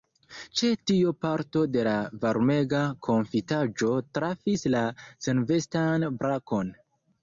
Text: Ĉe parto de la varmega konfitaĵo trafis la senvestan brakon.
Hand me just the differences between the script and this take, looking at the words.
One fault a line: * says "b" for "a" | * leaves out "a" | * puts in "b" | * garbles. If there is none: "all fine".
* puts in "tio"